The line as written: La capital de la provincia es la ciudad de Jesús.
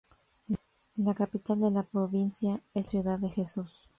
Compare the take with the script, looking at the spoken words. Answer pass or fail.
fail